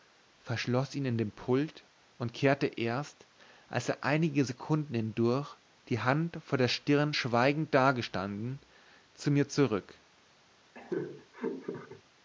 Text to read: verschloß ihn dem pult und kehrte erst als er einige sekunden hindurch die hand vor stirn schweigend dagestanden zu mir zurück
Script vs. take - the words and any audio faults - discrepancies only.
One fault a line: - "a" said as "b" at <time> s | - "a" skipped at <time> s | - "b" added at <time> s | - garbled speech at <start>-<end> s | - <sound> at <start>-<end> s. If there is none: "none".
- "in" added at 1.1 s
- "der" added at 6.6 s
- laugh at 10.7-12.0 s